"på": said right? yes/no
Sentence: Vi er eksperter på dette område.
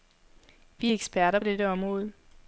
no